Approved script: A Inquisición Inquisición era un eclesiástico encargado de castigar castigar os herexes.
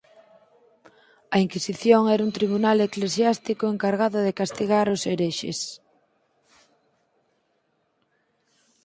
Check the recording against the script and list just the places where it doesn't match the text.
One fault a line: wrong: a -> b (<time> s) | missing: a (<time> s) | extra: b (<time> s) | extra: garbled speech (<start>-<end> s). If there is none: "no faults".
missing: Inquisición (2.0 s)
extra: tribunal (2.4 s)
missing: castigar (4.9 s)